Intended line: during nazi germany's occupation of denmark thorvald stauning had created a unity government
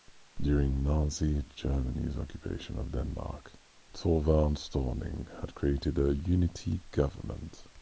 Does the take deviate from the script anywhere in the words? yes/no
no